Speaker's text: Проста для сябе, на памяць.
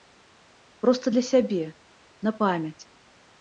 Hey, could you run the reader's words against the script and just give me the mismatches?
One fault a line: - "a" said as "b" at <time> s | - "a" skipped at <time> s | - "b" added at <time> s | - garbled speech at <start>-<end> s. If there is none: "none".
none